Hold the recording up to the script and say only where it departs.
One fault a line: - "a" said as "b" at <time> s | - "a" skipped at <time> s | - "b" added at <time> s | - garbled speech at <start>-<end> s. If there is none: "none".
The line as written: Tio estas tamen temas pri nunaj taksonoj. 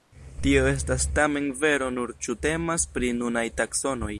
- "vero nur ĉu" added at 1.6 s